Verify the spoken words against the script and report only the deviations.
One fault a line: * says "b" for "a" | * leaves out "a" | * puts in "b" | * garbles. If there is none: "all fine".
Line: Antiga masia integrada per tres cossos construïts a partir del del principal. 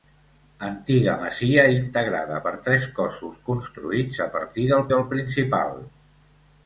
all fine